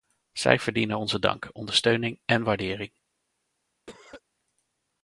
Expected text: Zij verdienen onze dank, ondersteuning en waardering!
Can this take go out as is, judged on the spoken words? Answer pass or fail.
pass